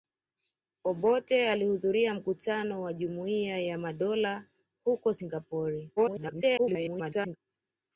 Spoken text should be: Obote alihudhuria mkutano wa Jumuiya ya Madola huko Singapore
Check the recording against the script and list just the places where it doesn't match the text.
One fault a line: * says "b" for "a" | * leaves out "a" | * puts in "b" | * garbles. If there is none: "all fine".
* garbles